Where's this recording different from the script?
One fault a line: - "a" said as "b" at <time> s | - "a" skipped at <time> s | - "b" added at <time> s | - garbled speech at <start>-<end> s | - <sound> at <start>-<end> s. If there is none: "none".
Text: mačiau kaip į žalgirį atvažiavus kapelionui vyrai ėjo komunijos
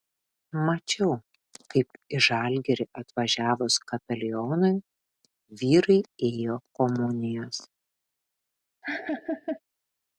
- laugh at 8.8-9.6 s